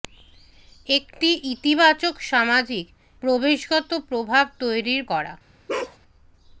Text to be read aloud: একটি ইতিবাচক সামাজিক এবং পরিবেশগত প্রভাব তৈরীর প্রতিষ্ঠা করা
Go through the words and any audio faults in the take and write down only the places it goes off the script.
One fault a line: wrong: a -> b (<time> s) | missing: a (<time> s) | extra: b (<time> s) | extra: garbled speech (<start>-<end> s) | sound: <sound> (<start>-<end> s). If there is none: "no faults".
missing: এবং (2.9 s)
missing: প্রতিষ্ঠা (5.0 s)
sound: bark (5.7-6.0 s)